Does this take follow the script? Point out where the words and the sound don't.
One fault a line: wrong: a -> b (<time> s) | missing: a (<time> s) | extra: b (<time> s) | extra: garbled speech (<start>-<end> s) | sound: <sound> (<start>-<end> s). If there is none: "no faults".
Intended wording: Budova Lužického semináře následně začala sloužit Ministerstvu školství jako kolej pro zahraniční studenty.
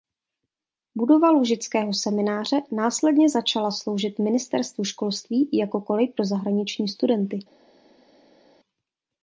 no faults